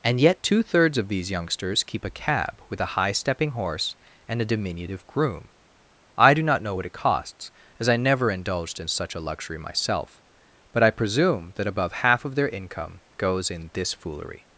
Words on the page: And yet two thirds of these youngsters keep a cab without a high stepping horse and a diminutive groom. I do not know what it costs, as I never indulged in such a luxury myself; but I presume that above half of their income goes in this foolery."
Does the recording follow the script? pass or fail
fail